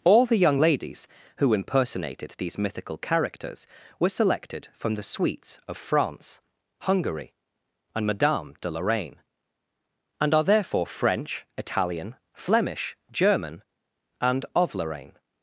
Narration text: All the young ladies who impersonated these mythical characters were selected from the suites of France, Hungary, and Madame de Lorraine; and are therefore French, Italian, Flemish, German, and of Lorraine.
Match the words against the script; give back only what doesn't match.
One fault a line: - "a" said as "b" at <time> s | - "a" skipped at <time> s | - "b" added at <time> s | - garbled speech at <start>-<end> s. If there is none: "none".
none